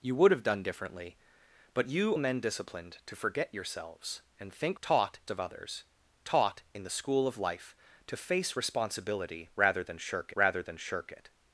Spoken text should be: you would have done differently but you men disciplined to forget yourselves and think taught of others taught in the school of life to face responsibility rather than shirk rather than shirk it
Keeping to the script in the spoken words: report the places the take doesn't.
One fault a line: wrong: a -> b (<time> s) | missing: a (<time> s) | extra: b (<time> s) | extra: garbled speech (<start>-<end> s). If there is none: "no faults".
no faults